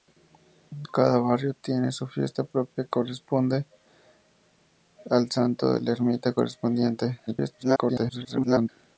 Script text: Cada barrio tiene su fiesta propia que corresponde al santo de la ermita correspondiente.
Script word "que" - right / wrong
wrong